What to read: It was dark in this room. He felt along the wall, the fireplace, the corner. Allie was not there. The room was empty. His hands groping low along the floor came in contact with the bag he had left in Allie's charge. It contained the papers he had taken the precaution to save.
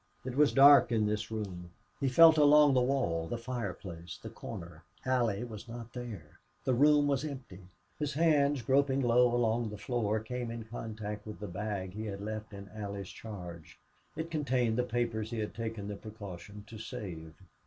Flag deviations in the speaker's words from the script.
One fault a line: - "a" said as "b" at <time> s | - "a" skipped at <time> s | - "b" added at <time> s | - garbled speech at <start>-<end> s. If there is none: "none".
none